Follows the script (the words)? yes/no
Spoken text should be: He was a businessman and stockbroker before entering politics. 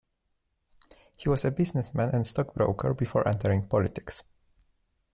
yes